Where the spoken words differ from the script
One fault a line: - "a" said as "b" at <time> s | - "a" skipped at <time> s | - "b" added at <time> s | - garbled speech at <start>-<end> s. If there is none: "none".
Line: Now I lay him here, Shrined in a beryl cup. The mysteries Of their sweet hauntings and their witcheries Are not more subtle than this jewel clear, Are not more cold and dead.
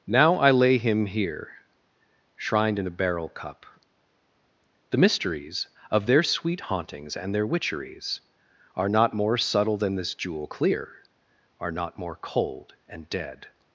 none